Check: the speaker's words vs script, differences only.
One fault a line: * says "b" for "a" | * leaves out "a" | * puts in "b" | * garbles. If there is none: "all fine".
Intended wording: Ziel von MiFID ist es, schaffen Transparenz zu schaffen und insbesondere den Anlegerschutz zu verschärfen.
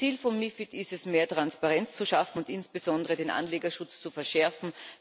* says "mehr" for "schaffen"